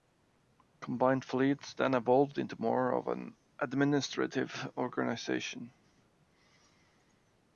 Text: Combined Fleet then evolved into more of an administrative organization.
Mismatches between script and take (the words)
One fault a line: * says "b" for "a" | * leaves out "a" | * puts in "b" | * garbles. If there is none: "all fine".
all fine